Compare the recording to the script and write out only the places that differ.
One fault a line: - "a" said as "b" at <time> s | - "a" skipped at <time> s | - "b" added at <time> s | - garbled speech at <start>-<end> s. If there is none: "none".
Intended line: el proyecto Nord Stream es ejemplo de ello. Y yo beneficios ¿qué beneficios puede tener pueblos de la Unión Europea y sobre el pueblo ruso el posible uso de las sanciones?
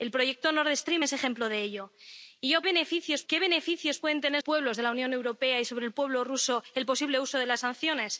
none